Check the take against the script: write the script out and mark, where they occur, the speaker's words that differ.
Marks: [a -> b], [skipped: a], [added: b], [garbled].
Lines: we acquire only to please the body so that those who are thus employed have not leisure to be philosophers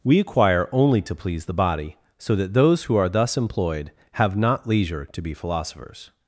we acquire only to please the body so that those who are thus employed have not leisure to be philosophers